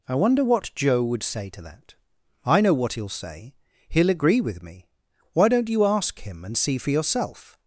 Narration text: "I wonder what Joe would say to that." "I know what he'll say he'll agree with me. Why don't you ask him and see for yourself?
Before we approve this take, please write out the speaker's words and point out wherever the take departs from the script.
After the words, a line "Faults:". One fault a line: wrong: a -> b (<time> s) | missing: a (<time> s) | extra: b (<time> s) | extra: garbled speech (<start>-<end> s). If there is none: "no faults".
"I wonder what Joe would say to that." "I know what he'll say he'll agree with me. Why don't you ask him and see for yourself?
Faults:
no faults